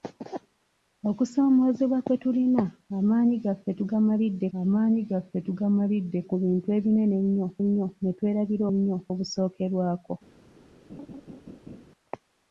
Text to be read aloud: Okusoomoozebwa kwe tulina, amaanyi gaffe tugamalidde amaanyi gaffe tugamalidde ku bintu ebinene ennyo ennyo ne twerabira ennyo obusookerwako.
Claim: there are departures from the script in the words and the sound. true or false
true